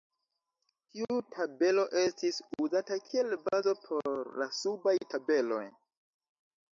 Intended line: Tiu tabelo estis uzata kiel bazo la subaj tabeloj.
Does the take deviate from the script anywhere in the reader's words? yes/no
yes